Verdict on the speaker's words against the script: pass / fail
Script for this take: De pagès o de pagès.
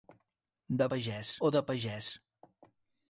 pass